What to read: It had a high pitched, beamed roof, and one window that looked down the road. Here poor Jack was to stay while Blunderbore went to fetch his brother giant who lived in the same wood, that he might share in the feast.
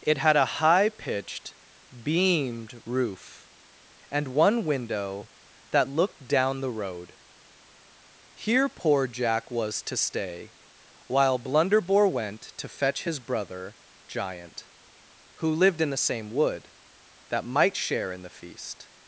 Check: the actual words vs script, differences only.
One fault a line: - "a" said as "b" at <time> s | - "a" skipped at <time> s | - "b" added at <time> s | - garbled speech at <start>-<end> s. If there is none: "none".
- "he" skipped at 17.4 s